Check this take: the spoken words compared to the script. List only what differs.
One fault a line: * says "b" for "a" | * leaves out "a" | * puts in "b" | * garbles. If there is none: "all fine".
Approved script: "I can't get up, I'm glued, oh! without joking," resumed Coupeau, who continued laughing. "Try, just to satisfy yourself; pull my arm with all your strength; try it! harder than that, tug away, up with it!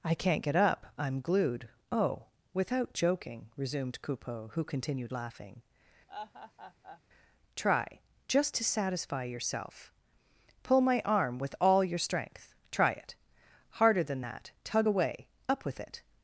all fine